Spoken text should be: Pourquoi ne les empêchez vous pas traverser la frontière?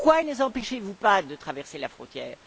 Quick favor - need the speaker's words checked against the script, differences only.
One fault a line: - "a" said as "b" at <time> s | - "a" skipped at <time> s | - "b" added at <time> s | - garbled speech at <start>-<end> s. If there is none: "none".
- "de" added at 1.2 s